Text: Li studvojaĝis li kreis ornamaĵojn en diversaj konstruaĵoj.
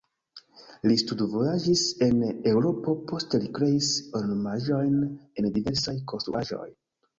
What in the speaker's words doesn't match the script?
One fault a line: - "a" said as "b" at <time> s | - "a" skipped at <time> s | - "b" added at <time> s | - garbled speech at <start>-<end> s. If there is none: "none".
- "en Eŭropo poste" added at 2.0 s